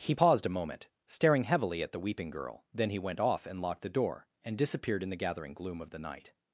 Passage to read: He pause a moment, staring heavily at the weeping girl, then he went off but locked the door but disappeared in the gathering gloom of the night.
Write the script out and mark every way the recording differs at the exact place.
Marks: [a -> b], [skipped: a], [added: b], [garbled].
He [pause -> paused] a moment, staring heavily at the weeping girl, then he went off [but -> and] locked the door [but -> and] disappeared in the gathering gloom of the night.